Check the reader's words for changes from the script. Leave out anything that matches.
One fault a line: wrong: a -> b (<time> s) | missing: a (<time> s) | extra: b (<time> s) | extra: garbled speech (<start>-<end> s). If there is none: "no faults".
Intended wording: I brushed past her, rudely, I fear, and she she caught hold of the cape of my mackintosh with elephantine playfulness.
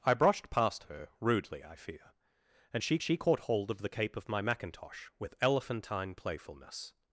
no faults